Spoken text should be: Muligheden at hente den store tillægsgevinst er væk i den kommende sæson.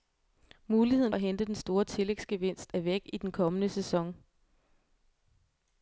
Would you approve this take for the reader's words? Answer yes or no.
yes